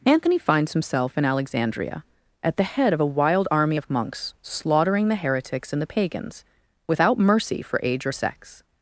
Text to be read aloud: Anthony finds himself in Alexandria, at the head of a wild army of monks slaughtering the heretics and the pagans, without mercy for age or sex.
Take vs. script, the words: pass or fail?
pass